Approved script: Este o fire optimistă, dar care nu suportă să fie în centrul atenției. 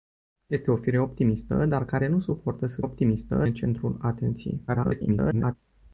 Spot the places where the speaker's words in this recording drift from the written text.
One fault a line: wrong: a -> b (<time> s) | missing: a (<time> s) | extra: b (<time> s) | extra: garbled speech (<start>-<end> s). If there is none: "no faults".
wrong: fie -> optimistă (2.8 s)
extra: garbled speech (4.7-5.6 s)